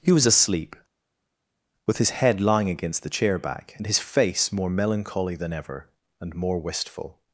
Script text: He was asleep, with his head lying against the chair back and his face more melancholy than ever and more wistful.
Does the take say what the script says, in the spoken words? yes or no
yes